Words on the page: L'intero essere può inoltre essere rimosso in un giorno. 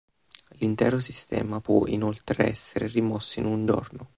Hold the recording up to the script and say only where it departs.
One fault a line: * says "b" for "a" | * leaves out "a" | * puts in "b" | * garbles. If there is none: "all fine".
* says "sistema" for "essere"